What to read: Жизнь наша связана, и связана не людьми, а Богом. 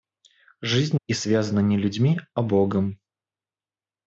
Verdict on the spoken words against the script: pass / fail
fail